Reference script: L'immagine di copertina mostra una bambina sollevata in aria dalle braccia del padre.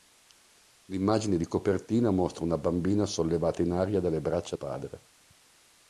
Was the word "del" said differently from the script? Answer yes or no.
yes